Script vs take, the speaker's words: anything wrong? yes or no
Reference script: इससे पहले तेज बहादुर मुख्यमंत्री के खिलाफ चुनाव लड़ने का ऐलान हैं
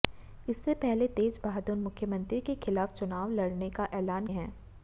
no